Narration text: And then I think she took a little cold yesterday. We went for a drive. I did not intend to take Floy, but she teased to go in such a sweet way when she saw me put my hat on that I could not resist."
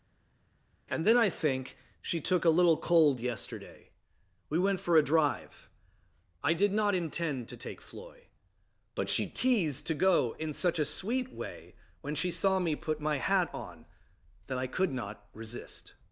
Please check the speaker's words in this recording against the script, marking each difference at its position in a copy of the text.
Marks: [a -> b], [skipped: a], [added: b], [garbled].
And then I think she took a little cold yesterday. We went for a drive. I did not intend to take Floy, but she teased to go in such a sweet way when she saw me put my hat on that I could not resist."